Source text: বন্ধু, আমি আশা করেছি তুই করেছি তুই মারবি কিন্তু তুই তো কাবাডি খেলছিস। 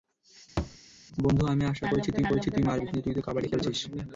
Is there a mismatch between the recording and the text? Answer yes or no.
no